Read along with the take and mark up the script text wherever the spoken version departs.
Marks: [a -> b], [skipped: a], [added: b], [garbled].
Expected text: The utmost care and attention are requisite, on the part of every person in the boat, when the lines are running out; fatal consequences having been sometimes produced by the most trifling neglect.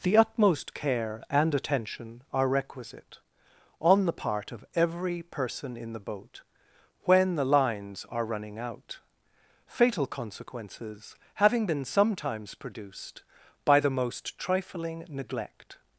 The utmost care and attention are requisite, on the part of every person in the boat, when the lines are running out; fatal consequences having been sometimes produced by the most trifling neglect.